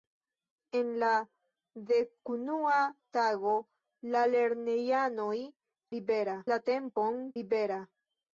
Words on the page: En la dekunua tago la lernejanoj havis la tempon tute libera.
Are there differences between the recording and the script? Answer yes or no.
yes